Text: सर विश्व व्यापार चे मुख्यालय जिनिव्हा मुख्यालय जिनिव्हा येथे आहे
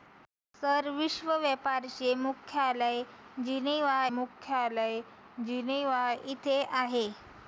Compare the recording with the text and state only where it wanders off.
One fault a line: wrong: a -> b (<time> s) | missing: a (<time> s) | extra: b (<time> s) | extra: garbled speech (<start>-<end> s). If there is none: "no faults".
no faults